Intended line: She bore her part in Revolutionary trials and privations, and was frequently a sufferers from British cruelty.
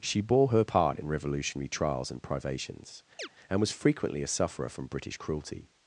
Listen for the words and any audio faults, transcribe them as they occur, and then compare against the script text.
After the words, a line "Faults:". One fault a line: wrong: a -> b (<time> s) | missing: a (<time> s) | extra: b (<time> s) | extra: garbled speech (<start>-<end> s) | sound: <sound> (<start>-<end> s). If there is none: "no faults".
She bore her part in Revolutionary trials and privations, and was frequently a sufferer from British cruelty.
Faults:
sound: chirp (3.2-3.3 s)
wrong: sufferers -> sufferer (4.3 s)